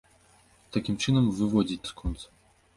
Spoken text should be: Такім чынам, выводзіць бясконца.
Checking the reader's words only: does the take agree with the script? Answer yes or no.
yes